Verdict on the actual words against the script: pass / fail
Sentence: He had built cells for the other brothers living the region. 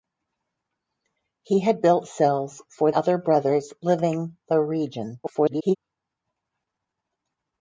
fail